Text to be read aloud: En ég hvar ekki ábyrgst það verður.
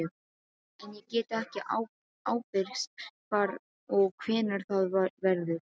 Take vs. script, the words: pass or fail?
fail